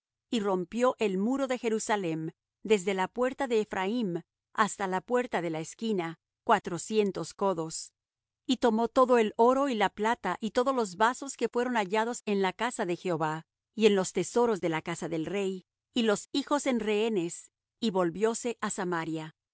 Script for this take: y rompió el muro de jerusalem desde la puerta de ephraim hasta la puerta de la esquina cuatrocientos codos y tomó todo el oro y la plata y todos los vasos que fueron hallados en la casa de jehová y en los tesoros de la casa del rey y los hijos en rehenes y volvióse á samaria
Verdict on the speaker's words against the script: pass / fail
pass